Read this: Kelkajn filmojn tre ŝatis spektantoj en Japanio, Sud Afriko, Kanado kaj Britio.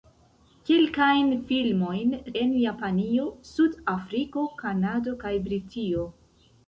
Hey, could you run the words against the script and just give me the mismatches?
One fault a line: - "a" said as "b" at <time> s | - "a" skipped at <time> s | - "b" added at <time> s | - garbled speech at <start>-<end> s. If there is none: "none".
- "tre ŝatis spektantoj" skipped at 2.1 s